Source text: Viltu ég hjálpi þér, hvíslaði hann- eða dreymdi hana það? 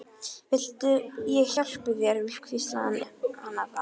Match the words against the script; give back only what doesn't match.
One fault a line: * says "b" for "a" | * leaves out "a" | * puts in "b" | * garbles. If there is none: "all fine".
* leaves out "eða dreymdi"